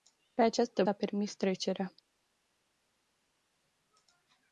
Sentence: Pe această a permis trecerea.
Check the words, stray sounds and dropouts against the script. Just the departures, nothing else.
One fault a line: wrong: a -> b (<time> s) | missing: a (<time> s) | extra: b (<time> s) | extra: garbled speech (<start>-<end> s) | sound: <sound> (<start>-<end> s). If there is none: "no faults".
no faults